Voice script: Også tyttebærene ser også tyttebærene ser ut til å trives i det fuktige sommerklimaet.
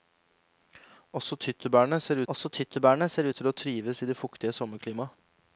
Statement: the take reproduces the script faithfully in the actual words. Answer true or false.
true